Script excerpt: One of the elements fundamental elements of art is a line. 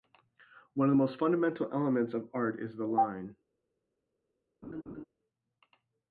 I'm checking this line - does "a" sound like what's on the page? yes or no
no